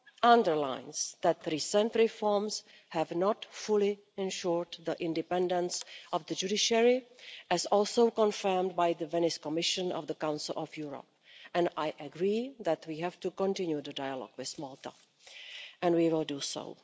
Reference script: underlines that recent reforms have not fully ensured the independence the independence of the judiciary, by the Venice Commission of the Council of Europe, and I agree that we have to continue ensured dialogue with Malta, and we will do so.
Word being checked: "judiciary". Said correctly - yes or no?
no